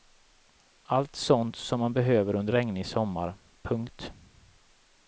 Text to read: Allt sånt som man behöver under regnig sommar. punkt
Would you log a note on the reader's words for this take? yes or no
no